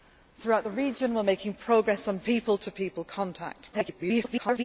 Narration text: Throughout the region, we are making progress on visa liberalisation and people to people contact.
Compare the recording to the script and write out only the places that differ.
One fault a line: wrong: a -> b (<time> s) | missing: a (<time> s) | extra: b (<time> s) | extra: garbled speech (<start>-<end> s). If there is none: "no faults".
missing: visa liberalisation and (2.2 s)
extra: garbled speech (3.7-4.6 s)